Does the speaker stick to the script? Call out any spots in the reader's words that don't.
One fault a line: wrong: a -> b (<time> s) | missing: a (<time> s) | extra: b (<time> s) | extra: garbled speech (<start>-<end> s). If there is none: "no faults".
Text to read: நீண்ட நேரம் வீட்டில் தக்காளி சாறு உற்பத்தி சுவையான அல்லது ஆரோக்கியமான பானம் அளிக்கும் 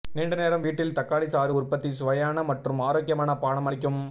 wrong: அல்லது -> மற்றும் (2.4 s)